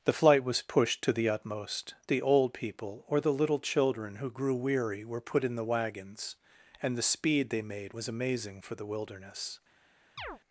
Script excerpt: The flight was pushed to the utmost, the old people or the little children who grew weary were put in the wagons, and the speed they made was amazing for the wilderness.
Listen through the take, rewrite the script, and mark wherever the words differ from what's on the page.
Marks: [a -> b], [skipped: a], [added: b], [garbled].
The flight was pushed to the utmost, the old people or the little children who grew weary were put in the wagons, and the speed they made was amazing for the wilderness.